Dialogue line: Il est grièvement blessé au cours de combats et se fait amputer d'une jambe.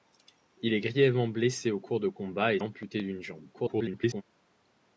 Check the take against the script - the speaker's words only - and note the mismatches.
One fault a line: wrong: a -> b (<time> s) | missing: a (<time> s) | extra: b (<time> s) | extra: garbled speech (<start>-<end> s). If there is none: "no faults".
missing: se fait (2.6 s)
extra: garbled speech (3.5-4.2 s)